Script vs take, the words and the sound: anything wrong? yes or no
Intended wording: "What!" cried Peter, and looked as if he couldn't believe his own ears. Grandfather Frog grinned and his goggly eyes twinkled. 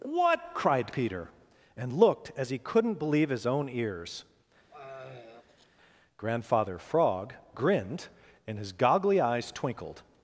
yes